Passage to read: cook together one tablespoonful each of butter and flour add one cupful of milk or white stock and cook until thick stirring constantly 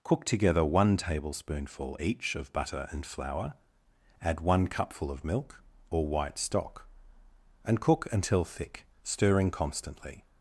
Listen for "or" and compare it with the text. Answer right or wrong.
right